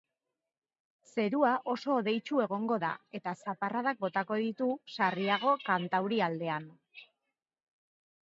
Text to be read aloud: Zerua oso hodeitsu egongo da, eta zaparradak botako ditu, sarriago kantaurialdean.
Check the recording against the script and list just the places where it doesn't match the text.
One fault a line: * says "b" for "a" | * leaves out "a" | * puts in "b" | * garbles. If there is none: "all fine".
all fine